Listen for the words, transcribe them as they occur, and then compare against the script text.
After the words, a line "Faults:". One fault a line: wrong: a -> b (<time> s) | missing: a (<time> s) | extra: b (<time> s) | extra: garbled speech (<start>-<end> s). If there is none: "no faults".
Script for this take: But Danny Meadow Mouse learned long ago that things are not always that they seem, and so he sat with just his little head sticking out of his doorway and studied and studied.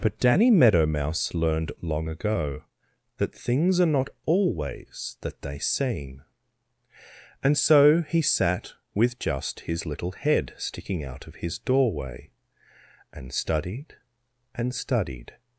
But Danny Meadow Mouse learned long ago that things are not always that they seem, and so he sat with just his little head sticking out of his doorway and studied and studied.
Faults:
no faults